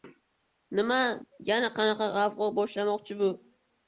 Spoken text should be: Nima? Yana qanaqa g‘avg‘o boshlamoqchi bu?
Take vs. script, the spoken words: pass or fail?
pass